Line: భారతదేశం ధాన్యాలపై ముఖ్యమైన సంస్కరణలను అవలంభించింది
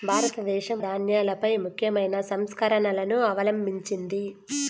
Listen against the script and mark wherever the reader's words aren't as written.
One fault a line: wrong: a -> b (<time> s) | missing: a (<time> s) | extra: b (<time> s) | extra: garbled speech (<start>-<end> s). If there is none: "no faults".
no faults